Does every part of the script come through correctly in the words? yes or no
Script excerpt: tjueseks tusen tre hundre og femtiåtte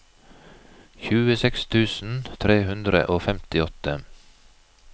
yes